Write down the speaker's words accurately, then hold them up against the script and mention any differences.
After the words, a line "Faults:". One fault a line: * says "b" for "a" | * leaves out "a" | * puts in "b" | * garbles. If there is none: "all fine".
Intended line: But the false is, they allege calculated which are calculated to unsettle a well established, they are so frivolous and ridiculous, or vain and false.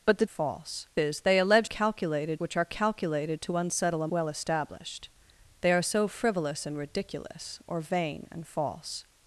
But the false is, they allege calculated which are calculated to unsettle a well established, they are so frivolous and ridiculous, or vain and false.
Faults:
all fine